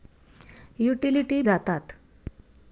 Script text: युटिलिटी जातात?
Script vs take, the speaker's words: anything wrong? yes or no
no